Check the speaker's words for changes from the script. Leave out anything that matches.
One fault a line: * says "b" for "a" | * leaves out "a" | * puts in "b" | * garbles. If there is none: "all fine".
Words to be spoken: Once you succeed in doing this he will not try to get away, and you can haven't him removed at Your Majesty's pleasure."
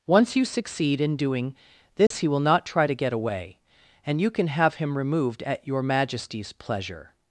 * says "have" for "haven't"